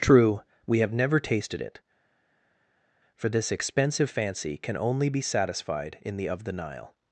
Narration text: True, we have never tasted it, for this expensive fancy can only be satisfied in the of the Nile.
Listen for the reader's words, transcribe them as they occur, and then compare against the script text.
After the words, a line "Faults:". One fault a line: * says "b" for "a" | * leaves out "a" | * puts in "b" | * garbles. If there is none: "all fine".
True, we have never tasted it, for this expensive fancy can only be satisfied in the of the Nile.
Faults:
all fine